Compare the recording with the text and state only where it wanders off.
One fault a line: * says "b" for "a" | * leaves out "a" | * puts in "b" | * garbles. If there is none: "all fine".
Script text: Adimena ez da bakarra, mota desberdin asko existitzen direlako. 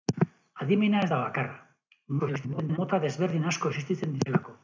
* garbles